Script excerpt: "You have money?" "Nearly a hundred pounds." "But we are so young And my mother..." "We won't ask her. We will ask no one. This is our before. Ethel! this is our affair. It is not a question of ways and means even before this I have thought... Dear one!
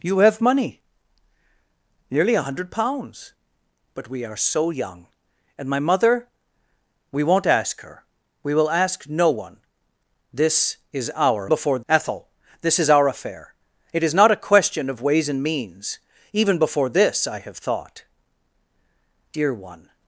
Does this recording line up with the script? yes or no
yes